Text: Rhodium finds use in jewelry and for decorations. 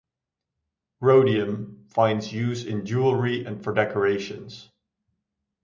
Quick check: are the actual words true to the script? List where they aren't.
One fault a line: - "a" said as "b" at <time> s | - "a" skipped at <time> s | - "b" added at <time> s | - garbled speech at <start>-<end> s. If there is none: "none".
none